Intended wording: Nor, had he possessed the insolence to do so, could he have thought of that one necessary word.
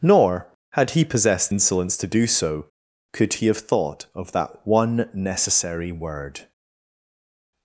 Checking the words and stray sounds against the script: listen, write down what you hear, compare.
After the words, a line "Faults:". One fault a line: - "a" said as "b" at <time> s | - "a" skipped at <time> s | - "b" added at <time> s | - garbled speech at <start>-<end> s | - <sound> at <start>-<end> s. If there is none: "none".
Nor, had he possessed insolence to do so, could he have thought of that one necessary word.
Faults:
- "the" skipped at 1.5 s